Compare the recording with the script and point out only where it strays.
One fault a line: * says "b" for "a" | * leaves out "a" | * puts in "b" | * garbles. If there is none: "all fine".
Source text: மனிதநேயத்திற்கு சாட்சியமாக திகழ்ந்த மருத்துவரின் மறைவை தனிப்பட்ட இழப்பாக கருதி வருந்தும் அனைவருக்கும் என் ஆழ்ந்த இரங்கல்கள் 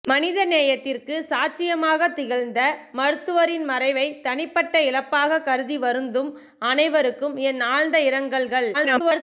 * garbles